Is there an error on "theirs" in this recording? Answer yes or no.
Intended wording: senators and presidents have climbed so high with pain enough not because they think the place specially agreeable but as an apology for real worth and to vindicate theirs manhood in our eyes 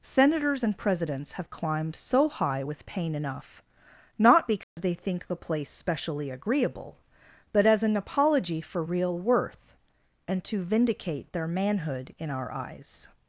yes